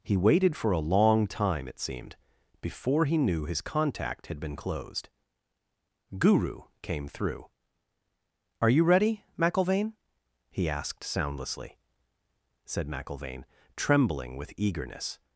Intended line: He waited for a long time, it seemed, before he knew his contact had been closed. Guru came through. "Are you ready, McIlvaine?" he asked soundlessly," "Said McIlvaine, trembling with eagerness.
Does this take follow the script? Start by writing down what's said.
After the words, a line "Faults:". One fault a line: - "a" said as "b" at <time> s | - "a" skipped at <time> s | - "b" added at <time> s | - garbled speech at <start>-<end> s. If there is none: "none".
He waited for a long time, it seemed, before he knew his contact had been closed. Guru came through. "Are you ready, McIlvaine?" he asked soundlessly," "Said McIlvaine, trembling with eagerness.
Faults:
none